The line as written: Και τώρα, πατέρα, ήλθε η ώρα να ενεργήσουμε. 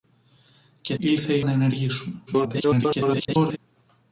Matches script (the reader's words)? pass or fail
fail